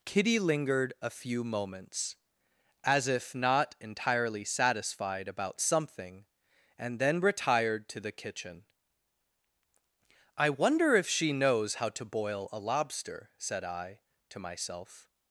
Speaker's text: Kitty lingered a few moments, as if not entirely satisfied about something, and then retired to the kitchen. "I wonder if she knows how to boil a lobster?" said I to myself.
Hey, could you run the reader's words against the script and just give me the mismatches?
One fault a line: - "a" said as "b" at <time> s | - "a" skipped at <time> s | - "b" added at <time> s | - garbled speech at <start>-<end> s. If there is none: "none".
none